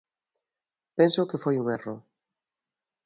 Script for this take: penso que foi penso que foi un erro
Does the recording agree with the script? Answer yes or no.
no